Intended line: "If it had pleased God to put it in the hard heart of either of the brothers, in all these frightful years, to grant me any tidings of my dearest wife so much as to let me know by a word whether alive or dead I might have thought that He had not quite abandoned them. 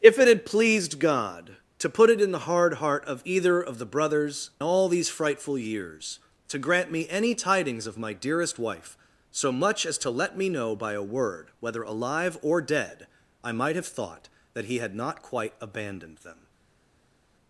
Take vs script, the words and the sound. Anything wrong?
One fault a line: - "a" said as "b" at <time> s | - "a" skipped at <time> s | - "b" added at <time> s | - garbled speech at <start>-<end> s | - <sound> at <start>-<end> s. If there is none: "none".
- "in" skipped at 4.5 s